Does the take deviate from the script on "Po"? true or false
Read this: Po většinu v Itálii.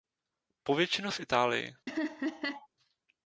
false